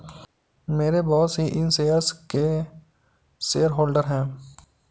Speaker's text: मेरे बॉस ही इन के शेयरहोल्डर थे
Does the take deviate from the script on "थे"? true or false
true